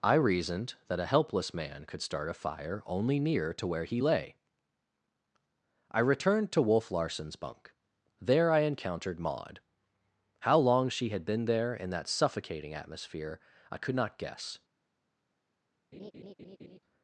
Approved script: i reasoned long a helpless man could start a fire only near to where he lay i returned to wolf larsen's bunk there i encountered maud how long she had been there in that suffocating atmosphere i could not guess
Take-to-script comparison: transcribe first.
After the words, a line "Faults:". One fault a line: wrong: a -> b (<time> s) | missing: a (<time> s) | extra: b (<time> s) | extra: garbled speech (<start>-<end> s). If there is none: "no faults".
i reasoned that a helpless man could start a fire only near to where he lay i returned to wolf larsen's bunk there i encountered maud how long she had been there in that suffocating atmosphere i could not guess
Faults:
wrong: long -> that (0.9 s)